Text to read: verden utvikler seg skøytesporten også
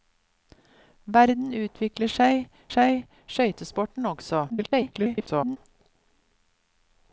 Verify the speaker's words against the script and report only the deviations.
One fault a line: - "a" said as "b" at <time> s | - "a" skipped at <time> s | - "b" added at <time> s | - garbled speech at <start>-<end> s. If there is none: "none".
- "seg" added at 2.7 s
- garbled speech at 4.5-5.6 s